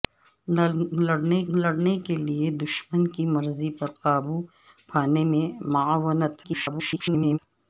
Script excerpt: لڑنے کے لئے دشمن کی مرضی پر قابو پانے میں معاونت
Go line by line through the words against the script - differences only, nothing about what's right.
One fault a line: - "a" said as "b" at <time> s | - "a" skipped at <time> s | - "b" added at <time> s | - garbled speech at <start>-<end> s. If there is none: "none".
- "لڑنے" added at 1.5 s
- garbled speech at 6.4-7.4 s